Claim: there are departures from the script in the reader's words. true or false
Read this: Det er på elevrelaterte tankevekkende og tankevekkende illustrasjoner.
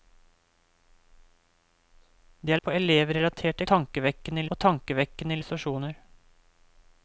false